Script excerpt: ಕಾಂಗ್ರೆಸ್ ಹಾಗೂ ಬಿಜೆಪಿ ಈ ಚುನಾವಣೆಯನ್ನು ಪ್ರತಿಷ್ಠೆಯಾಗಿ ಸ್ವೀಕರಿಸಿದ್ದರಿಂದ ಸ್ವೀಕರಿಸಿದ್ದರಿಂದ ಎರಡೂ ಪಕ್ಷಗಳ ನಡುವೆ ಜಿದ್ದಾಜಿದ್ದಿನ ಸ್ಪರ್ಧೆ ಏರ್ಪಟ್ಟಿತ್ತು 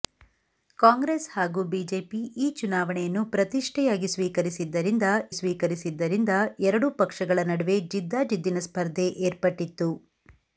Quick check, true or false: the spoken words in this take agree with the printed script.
true